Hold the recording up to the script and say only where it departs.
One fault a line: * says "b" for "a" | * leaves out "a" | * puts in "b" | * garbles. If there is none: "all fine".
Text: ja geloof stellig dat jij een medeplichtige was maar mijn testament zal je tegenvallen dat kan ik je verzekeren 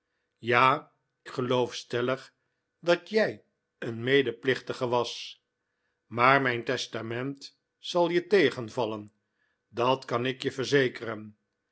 all fine